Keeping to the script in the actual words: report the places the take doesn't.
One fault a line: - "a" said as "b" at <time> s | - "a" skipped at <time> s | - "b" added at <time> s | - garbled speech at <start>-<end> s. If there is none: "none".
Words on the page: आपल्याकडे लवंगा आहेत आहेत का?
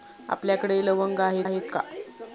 none